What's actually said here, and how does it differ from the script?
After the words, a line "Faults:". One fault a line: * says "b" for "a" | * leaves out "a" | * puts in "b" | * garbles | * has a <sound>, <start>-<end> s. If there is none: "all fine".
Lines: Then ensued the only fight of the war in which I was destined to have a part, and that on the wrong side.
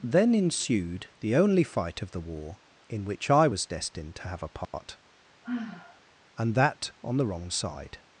Then ensued the only fight of the war in which I was destined to have a part, and that on the wrong side.
Faults:
* has a dropout, 4.6-4.7 s
* has a sigh, 5.4-6.0 s